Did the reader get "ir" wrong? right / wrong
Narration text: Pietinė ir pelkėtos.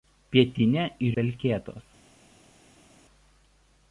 right